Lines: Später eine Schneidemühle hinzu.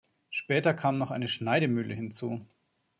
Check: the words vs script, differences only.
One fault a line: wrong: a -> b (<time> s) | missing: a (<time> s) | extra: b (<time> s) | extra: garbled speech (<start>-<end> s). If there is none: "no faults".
extra: kam noch (0.7 s)